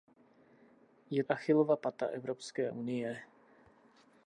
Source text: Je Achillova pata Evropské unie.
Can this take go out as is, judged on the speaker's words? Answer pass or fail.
pass